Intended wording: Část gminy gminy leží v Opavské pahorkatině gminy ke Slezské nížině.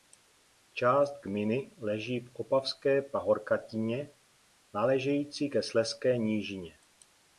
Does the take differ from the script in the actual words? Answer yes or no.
yes